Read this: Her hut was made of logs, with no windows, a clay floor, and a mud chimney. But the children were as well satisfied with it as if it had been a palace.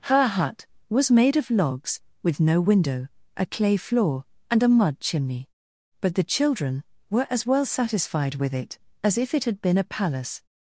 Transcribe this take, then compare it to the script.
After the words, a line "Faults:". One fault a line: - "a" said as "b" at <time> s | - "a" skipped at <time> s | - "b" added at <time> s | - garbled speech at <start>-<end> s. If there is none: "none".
Her hut was made of logs, with no window, a clay floor, and a mud chimney. But the children were as well satisfied with it as if it had been a palace.
Faults:
- "windows" said as "window" at 2.6 s